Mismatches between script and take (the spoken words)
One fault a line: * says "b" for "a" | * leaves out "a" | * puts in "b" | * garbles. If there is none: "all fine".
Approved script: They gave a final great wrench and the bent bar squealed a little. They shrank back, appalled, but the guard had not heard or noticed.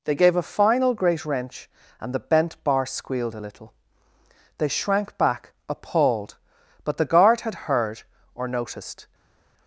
* leaves out "not"